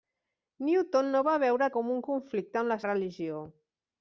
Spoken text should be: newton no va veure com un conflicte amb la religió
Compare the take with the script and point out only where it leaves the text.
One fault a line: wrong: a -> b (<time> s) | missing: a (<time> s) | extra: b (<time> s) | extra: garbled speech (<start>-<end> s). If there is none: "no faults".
no faults